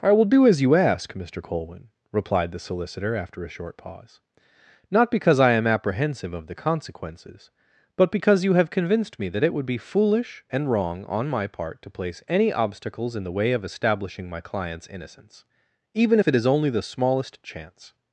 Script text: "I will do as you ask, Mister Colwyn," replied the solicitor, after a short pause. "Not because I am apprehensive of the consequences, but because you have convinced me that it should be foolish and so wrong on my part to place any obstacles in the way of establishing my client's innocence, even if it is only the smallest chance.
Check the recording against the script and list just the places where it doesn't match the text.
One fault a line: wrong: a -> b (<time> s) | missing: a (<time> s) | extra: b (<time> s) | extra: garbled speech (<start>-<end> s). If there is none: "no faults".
wrong: should -> would (9.5 s)
missing: so (10.7 s)